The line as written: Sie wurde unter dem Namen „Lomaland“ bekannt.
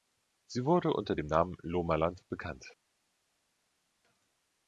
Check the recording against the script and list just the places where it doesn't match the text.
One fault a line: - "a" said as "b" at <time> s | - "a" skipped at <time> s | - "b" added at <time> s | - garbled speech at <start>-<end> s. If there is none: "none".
none